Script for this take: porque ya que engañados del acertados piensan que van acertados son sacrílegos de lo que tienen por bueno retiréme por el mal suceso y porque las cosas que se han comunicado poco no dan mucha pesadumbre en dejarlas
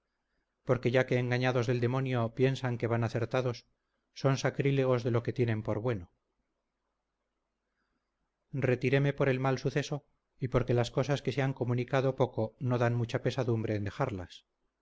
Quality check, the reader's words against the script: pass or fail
fail